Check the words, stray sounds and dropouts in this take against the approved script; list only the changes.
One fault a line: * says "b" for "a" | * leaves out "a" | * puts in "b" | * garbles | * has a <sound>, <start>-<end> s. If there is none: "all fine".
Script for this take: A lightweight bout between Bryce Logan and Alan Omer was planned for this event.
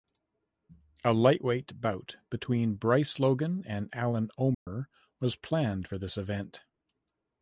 * has a dropout, 4.5-4.7 s